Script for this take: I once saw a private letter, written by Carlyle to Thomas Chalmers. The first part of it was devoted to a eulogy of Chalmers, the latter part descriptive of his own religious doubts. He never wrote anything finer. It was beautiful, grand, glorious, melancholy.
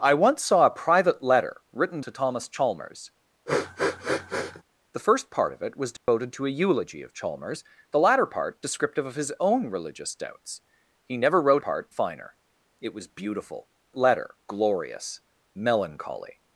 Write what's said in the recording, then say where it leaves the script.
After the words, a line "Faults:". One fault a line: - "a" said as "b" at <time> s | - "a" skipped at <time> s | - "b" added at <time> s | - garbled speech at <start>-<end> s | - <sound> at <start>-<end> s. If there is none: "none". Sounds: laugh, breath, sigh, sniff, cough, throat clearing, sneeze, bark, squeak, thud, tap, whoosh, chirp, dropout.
I once saw a private letter, written to Thomas Chalmers. The first part of it was devoted to a eulogy of Chalmers, the latter part descriptive of his own religious doubts. He never wrote part finer. It was beautiful, letter, glorious, melancholy.
Faults:
- "by Carlyle" skipped at 2.0 s
- sniff at 3.5-4.6 s
- dropout at 6.0-6.1 s
- "anything" said as "part" at 11.6 s
- "grand" said as "letter" at 13.9 s